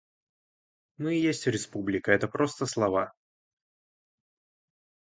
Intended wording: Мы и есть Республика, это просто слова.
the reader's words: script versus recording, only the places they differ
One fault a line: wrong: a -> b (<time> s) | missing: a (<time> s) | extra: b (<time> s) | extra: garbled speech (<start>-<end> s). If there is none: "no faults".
no faults